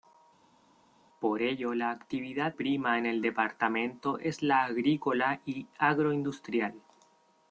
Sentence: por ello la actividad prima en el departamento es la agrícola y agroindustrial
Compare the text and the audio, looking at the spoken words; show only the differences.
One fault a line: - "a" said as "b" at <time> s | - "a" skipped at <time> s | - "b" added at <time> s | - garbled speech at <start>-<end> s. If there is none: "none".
none